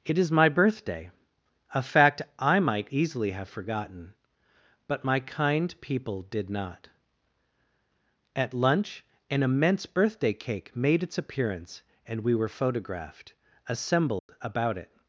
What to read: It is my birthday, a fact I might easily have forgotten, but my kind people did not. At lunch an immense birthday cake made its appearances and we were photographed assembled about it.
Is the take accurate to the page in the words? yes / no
no